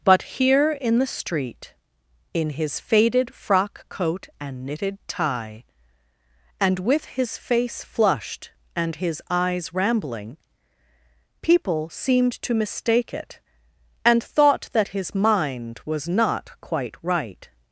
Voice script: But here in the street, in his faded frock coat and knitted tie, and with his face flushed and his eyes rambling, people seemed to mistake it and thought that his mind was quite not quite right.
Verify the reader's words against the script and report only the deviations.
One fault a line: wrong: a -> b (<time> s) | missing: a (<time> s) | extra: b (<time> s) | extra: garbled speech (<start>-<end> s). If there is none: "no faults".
missing: quite (16.1 s)